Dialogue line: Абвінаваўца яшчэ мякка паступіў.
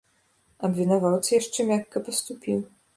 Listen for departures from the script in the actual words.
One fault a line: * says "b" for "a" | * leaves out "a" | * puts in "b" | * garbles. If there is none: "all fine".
all fine